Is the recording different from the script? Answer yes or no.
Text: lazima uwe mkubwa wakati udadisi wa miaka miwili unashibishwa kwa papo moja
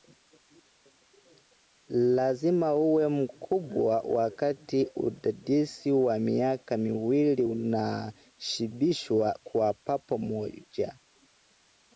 no